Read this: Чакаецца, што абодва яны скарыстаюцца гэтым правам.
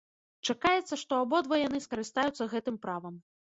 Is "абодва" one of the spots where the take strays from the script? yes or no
no